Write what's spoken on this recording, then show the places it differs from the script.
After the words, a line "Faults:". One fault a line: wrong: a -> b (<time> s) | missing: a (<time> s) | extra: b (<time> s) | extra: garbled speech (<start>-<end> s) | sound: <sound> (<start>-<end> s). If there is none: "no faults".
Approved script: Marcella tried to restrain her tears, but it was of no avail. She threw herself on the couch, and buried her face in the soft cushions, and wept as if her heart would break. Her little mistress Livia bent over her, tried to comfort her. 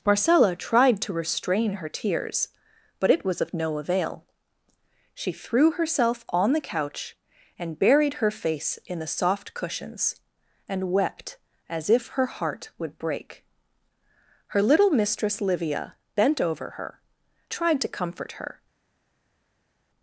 Marcella tried to restrain her tears, but it was of no avail. She threw herself on the couch, and buried her face in the soft cushions, and wept as if her heart would break. Her little mistress Livia bent over her, tried to comfort her.
Faults:
no faults